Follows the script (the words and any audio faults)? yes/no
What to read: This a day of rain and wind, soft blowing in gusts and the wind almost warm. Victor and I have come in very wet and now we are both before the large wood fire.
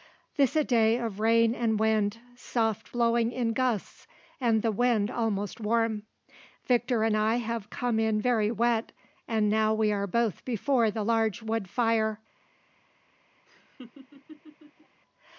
no